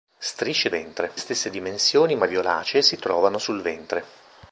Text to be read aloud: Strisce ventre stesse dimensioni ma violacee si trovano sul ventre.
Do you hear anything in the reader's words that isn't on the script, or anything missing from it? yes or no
no